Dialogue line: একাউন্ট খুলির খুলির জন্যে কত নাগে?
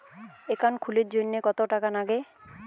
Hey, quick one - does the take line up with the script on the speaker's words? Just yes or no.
no